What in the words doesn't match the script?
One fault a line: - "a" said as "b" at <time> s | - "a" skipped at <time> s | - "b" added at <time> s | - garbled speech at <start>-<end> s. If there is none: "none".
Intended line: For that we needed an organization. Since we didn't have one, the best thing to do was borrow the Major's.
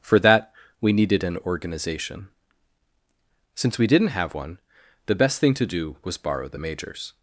none